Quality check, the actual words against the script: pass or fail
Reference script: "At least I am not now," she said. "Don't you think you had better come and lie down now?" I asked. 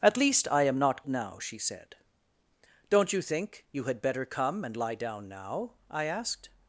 pass